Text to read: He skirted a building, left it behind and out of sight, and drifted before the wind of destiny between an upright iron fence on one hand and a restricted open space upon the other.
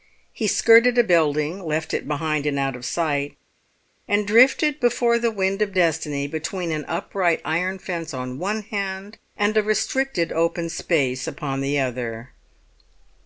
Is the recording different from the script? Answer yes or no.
no